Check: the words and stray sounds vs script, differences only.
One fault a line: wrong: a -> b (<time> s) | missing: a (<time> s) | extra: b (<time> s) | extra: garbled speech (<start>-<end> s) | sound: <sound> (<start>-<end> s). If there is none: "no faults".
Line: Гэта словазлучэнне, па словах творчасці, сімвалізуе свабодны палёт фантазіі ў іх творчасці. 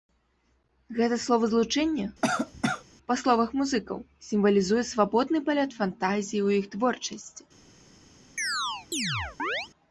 sound: cough (2.2-2.8 s)
wrong: творчасці -> музыкаў (3.6 s)
sound: chirp (8.4-9.7 s)